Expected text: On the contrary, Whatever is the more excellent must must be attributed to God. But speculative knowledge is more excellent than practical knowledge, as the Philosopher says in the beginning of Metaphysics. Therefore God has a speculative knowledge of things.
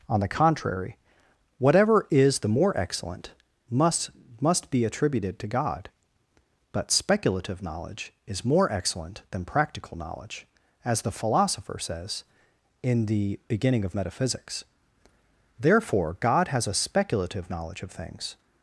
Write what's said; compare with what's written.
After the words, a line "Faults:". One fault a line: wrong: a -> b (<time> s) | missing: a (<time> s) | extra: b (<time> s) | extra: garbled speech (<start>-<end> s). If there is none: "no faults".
On the contrary, Whatever is the more excellent must must be attributed to God. But speculative knowledge is more excellent than practical knowledge, as the Philosopher says in the beginning of Metaphysics. Therefore God has a speculative knowledge of things.
Faults:
no faults